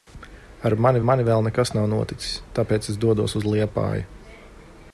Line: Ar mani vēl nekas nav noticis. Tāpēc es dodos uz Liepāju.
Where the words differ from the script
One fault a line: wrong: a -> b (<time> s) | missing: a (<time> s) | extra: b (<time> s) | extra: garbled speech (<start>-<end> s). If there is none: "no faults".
extra: mani (1.1 s)